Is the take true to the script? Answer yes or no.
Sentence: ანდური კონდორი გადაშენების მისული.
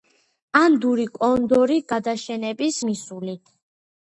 yes